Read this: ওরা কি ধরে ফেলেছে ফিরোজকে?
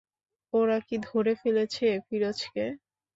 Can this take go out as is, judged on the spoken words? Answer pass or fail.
pass